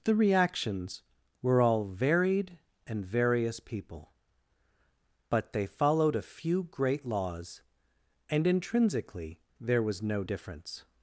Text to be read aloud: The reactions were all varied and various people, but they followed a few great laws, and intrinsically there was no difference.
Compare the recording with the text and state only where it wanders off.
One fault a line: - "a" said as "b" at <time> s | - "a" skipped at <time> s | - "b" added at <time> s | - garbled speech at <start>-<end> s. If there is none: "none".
none